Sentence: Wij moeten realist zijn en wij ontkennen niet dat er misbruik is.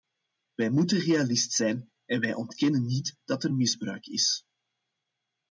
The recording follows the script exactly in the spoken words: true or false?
true